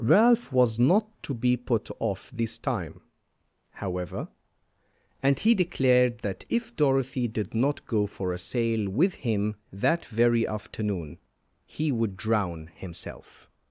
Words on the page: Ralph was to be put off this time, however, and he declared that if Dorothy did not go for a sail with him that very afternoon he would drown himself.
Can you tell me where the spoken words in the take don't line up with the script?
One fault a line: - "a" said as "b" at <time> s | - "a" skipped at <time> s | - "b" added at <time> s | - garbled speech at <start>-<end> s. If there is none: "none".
- "not" added at 0.8 s